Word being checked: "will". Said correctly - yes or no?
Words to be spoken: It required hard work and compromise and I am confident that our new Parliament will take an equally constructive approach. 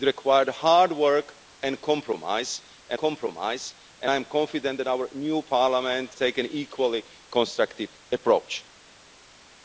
no